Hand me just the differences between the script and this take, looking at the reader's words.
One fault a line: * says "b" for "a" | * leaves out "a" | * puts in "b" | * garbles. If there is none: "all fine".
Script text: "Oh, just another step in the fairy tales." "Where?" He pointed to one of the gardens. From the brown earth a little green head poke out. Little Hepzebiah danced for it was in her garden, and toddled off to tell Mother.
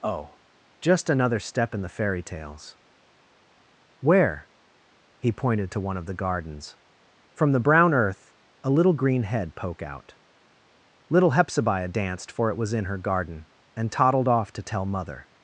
all fine